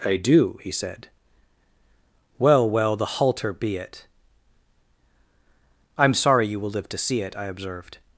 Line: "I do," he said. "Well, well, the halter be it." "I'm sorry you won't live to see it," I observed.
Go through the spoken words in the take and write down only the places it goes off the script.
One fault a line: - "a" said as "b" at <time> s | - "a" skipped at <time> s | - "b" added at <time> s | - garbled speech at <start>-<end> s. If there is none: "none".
- "won't" said as "will" at 6.6 s